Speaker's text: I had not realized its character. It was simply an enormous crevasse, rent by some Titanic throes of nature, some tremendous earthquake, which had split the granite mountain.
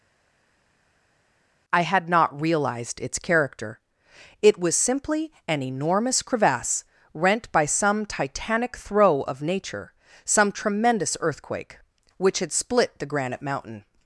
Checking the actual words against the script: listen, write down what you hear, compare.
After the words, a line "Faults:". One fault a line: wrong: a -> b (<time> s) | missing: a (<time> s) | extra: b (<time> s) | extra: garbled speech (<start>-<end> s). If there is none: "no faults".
I had not realized its character. It was simply an enormous crevasse, rent by some Titanic throe of nature, some tremendous earthquake, which had split the granite mountain.
Faults:
wrong: throes -> throe (8.8 s)